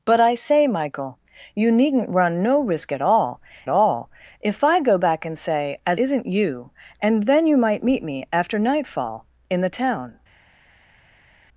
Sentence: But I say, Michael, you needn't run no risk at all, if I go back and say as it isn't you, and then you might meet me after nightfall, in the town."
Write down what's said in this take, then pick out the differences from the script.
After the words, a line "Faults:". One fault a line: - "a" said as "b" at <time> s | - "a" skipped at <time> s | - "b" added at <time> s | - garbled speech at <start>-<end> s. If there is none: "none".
But I say, Michael, you needn't run no risk at all all, if I go back and say as isn't you, and then you might meet me after nightfall, in the town."
Faults:
- "all" added at 3.7 s
- "it" skipped at 6.0 s